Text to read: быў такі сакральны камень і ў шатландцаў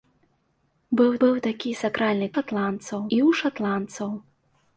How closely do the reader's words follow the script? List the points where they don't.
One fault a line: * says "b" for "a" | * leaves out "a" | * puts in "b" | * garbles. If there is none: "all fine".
* puts in "быў"
* says "шатландцаў" for "камень"